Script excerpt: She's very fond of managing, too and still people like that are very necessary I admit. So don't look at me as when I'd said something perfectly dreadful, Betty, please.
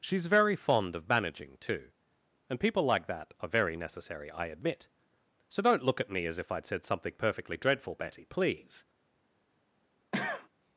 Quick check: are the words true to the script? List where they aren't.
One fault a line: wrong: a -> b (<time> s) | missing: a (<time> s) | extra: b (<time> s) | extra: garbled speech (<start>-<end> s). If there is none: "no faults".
missing: still (2.6 s)
wrong: when -> if (6.4 s)